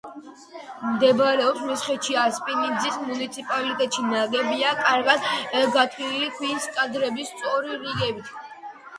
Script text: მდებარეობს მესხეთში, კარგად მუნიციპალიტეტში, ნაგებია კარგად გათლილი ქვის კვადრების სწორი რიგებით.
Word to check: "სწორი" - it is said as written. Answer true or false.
true